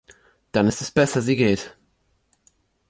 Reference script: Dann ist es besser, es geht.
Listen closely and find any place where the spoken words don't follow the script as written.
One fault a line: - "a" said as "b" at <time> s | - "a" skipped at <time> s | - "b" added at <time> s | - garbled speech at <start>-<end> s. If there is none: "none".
- "es" said as "sie" at 1.2 s